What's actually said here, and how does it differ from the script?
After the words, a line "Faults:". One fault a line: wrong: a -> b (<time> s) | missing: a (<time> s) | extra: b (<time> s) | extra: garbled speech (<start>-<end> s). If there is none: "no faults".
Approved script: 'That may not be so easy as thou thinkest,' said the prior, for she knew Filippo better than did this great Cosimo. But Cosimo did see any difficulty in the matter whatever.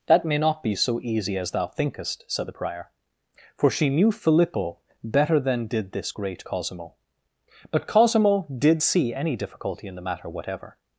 'That may not be so easy as thou thinkest,' said the prior, for she knew Filippo better than did this great Cosimo. But Cosimo did see any difficulty in the matter whatever.
Faults:
no faults